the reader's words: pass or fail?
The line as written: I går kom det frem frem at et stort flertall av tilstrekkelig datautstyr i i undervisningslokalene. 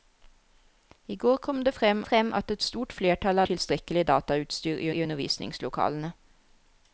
pass